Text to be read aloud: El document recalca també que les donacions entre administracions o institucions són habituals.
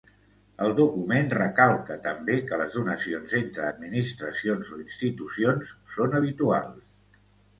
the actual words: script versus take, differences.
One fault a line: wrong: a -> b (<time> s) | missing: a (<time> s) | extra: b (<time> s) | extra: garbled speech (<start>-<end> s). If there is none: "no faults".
no faults